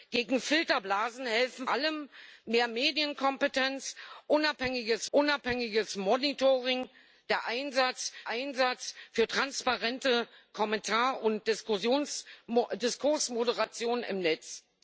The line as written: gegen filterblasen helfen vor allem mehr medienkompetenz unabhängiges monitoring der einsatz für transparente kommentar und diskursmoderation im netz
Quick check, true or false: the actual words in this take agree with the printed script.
false